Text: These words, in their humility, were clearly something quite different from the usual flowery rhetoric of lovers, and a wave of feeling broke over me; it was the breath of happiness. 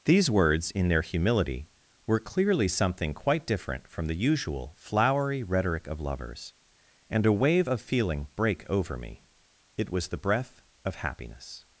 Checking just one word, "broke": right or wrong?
wrong